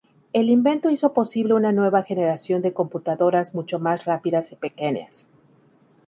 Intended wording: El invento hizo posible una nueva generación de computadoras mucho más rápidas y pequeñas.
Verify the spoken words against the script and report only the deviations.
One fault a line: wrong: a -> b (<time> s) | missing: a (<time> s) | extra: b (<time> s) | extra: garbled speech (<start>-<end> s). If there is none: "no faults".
no faults